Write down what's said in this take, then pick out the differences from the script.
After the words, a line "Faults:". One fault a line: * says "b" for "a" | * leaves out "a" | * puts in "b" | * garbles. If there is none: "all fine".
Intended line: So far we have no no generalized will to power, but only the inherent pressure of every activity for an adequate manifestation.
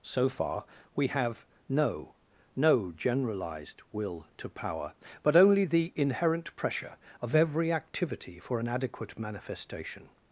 So far we have no no generalized will to power, but only the inherent pressure of every activity for an adequate manifestation.
Faults:
all fine